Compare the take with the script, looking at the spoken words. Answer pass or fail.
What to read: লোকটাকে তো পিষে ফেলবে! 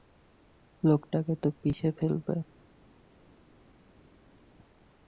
pass